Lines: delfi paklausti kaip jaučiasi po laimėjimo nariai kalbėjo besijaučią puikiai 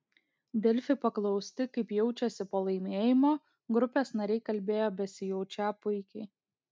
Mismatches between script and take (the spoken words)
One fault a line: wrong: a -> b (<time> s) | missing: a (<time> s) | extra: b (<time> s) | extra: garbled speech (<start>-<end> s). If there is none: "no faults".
extra: grupės (3.8 s)